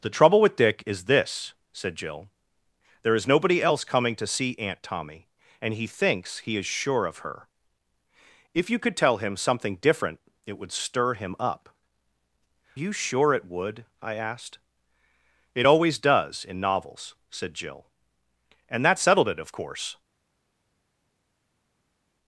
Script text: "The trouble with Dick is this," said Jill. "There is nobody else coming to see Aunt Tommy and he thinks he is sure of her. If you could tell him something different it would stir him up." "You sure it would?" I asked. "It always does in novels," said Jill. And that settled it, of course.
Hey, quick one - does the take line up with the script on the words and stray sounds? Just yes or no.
yes